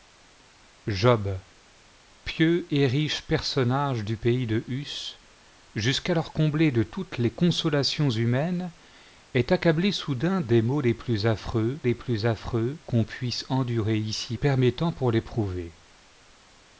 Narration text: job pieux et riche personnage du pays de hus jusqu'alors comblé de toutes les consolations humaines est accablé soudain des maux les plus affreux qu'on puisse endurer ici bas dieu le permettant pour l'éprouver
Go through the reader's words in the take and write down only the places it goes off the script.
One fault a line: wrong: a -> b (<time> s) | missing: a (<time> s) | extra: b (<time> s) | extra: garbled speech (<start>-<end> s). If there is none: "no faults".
extra: les plus affreux (11.8 s)
missing: bas dieu le (14.4 s)